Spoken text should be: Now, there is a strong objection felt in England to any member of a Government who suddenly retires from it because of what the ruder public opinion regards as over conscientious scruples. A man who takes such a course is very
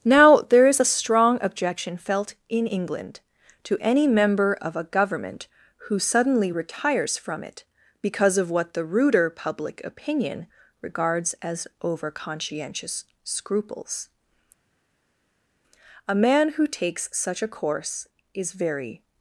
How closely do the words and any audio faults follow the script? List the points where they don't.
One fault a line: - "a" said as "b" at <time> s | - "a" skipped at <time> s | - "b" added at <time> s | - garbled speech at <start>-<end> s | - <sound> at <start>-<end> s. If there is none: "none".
none